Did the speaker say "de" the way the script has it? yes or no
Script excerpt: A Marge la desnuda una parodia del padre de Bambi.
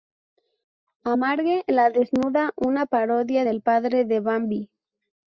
yes